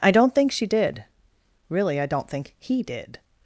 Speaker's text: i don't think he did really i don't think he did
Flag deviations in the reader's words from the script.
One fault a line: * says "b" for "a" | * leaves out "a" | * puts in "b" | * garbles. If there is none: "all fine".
* says "she" for "he"